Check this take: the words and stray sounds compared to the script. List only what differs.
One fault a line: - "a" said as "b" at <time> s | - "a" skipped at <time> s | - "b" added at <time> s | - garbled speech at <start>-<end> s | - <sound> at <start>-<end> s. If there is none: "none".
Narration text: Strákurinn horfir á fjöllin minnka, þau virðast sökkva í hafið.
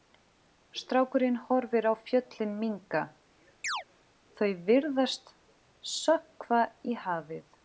- chirp at 3.6-3.8 s